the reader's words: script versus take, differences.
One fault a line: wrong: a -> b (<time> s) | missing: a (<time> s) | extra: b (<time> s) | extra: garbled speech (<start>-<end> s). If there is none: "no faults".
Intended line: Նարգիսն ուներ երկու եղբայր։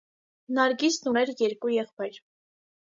no faults